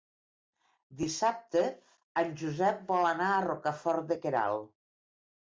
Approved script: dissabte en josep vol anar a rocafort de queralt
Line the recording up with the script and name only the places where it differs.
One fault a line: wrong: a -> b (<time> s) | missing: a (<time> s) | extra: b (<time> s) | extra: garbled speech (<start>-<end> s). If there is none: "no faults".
no faults